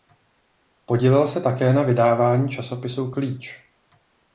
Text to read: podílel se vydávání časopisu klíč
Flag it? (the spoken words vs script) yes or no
yes